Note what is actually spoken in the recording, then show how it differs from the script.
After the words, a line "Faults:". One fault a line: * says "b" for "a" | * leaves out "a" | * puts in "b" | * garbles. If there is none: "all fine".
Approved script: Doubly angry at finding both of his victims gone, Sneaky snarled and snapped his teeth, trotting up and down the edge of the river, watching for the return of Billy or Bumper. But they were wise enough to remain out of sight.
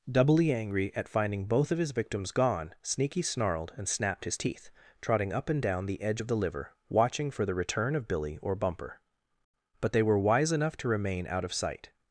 Doubly angry at finding both of his victims gone, Sneaky snarled and snapped his teeth, trotting up and down the edge of the liver, watching for the return of Billy or Bumper. But they were wise enough to remain out of sight.
Faults:
* says "liver" for "river"